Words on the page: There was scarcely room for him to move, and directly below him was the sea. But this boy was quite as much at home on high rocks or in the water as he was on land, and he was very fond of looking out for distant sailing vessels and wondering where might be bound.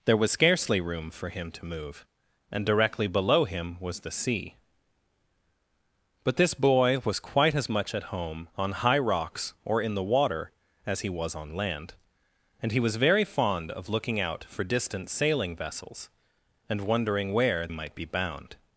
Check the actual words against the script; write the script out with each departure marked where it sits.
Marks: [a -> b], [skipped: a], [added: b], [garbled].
There was scarcely room for him to move, and directly below him was the sea. But this boy was quite as much at home on high rocks or in the water as he was on land, and he was very fond of looking out for distant sailing vessels and wondering where might be bound.